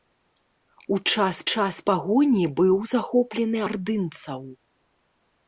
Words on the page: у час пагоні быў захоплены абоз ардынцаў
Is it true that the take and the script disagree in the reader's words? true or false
true